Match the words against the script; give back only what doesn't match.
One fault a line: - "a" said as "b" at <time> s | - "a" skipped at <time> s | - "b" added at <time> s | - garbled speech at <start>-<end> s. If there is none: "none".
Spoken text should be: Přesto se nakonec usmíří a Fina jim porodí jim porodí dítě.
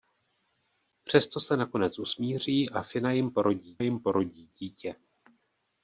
none